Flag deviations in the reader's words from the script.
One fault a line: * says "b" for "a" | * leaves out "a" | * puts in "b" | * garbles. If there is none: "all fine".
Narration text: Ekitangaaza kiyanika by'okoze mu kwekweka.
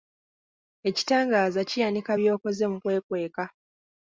all fine